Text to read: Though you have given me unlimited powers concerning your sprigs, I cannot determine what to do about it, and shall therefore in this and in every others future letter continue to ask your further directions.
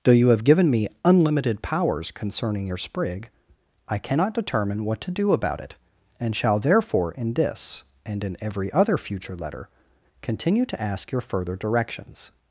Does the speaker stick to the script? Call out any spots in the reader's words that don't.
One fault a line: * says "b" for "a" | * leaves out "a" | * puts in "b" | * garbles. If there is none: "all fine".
* says "sprig" for "sprigs"
* says "other" for "others"